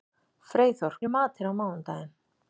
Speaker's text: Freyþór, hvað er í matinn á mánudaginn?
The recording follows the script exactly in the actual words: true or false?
false